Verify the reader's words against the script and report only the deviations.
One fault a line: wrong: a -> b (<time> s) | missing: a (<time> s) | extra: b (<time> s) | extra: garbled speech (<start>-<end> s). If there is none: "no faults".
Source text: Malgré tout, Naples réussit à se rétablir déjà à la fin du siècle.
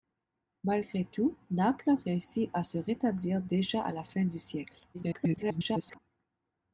extra: garbled speech (4.9-6.0 s)